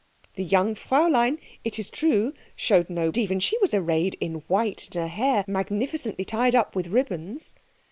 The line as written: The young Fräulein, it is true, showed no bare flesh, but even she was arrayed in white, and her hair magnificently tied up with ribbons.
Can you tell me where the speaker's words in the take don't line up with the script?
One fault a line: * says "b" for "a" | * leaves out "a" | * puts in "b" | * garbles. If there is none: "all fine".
* leaves out "bare flesh but"